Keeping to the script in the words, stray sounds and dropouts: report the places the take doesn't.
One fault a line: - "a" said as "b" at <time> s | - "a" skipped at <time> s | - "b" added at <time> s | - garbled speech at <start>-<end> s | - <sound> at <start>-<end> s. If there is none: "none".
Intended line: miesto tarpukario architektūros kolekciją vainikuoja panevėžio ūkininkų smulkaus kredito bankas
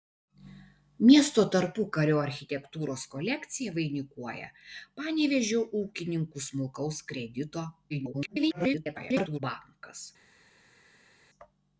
- garbled speech at 7.9-9.4 s